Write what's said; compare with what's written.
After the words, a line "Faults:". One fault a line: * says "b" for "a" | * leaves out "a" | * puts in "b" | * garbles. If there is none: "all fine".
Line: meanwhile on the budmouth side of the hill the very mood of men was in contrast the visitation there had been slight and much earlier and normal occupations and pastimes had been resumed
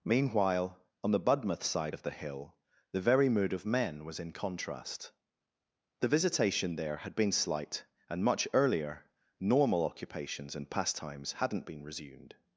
meanwhile on the budmouth side of the hill the very mood of men was in contrast the visitation there had been slight and much earlier normal occupations and pastimes hadn't been resumed
Faults:
* leaves out "and"
* says "hadn't" for "had"